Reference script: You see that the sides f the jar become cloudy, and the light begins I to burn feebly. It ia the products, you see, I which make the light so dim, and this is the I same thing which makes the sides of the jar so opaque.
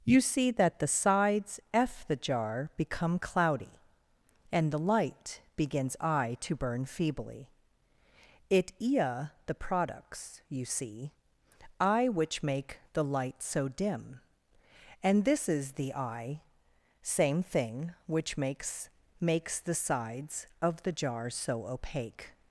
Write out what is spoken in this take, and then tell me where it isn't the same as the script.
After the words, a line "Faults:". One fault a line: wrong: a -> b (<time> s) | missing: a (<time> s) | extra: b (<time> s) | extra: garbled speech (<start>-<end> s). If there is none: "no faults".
You see that the sides f the jar become cloudy, and the light begins I to burn feebly. It ia the products, you see, I which make the light so dim, and this is the I same thing which makes makes the sides of the jar so opaque.
Faults:
extra: makes (19.2 s)